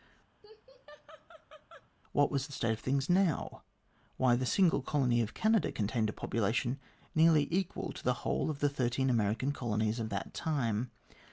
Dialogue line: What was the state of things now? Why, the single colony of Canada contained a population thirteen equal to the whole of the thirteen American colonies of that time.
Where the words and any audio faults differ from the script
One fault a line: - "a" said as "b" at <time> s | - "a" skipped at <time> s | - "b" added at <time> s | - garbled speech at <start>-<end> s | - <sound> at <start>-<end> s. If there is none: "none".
- laugh at 0.4-1.9 s
- "thirteen" said as "nearly" at 7.2 s